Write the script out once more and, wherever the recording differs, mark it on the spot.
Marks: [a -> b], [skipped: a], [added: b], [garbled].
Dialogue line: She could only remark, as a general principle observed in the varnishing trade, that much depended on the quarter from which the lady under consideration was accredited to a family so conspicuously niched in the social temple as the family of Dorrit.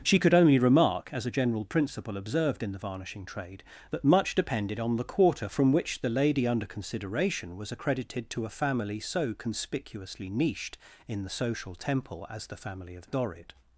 She could only remark, as a general principle observed in the varnishing trade, that much depended on the quarter from which the lady under consideration was accredited to a family so conspicuously niched in the social temple as the family of Dorrit.